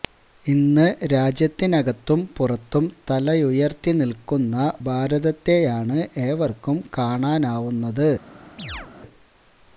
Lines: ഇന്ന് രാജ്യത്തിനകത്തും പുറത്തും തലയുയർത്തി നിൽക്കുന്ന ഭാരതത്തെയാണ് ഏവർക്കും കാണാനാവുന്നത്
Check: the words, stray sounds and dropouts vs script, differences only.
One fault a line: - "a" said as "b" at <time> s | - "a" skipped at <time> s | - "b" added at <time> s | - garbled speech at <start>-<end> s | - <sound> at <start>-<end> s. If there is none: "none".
- chirp at 8.6-8.9 s